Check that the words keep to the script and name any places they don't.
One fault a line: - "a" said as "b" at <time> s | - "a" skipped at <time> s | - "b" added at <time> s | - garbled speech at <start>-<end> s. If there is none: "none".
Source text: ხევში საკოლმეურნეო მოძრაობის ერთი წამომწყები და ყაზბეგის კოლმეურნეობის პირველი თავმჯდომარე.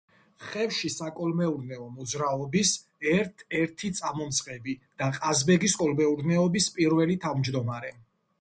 - "ერთ" added at 3.1 s